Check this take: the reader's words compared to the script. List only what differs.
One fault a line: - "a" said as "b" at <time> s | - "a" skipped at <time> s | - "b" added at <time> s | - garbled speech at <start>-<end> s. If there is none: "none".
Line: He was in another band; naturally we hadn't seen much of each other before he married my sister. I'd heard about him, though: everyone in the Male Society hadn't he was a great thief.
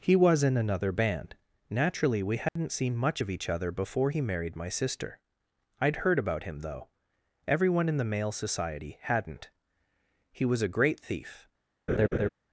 none